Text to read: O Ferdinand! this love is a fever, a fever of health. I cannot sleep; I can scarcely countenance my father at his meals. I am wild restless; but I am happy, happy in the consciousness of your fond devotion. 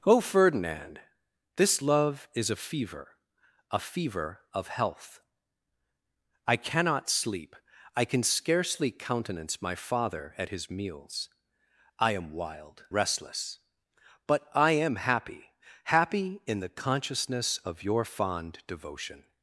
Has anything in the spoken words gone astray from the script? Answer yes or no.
no